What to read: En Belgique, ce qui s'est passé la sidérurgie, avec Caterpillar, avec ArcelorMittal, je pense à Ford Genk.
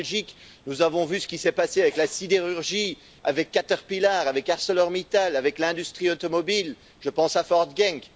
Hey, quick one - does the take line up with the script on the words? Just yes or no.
no